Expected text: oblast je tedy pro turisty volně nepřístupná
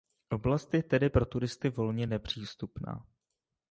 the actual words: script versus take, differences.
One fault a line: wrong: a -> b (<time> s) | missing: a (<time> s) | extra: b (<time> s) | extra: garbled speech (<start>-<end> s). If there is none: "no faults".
no faults